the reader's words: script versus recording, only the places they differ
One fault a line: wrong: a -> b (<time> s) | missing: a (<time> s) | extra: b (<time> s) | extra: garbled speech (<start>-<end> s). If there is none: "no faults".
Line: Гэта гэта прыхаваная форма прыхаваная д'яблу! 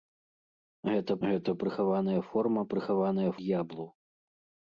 no faults